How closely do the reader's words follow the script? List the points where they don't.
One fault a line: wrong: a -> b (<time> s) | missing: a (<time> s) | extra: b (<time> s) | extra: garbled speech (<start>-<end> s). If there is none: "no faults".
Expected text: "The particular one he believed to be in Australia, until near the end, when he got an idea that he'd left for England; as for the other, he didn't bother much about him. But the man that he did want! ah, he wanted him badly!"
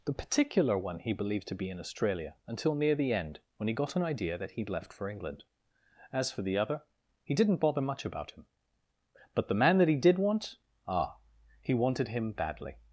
no faults